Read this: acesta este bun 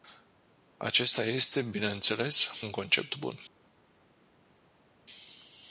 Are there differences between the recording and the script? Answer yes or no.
yes